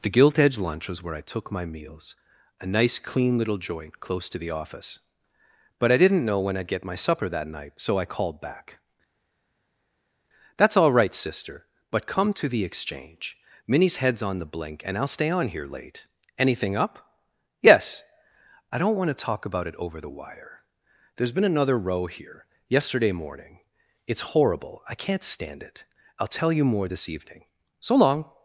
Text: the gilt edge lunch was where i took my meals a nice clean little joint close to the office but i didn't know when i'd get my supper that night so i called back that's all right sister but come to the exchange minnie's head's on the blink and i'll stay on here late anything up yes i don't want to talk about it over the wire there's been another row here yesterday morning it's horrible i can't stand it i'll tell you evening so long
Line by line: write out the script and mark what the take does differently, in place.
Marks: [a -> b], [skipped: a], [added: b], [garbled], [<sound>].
the gilt edge lunch was where i took my meals a nice clean little joint close to the office but i didn't know when i'd get my supper that night so i called back that's all right sister but come to the exchange minnie's head's on the blink and i'll stay on here late anything up yes i don't want to talk about it over the wire there's been another row here yesterday morning it's horrible i can't stand it i'll tell you [added: more this] evening so long